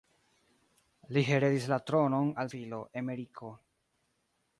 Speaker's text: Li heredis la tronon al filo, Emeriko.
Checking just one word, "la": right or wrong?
right